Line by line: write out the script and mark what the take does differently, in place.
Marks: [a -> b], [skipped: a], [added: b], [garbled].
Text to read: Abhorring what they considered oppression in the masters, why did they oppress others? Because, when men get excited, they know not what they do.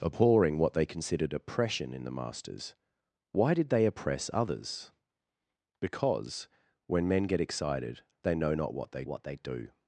Abhorring what they considered oppression in the masters, why did they oppress others? Because, when men get excited, they know not what they [added: what they] do.